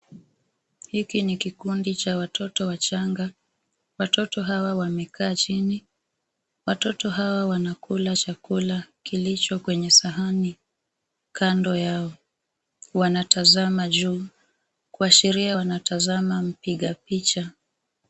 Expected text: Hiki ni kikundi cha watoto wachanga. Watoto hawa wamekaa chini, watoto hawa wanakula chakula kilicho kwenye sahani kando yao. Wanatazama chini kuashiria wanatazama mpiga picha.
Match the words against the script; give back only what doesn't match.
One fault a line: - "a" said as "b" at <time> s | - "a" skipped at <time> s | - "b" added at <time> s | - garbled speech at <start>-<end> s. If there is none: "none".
- "chini" said as "juu" at 13.9 s